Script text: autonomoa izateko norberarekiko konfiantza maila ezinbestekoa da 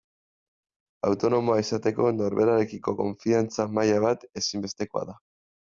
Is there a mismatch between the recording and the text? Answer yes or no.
yes